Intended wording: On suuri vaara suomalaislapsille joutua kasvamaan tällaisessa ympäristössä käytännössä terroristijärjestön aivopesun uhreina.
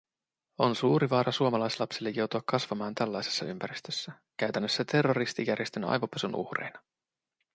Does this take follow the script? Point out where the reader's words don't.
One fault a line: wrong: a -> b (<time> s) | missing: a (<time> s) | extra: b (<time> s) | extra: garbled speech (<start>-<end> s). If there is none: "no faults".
no faults